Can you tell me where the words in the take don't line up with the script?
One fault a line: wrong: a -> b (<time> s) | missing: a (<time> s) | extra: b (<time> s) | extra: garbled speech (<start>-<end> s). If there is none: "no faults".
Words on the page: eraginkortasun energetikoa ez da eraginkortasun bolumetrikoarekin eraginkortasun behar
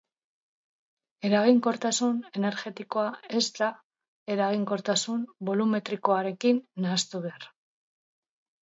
wrong: eraginkortasun -> nahastu (6.9 s)